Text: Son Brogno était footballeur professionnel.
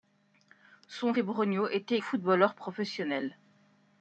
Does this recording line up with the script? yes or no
yes